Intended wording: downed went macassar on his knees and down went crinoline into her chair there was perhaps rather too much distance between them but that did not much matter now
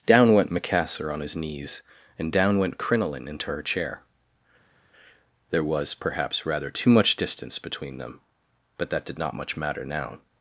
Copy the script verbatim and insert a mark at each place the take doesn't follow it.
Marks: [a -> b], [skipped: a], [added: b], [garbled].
[downed -> down] went macassar on his knees and down went crinoline into her chair there was perhaps rather too much distance between them but that did not much matter now